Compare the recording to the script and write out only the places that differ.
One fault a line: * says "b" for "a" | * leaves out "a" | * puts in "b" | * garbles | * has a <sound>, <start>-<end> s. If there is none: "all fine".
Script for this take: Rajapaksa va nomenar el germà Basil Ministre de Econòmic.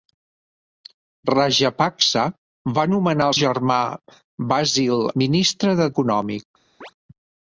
* has a chirp, 6.8-6.9 s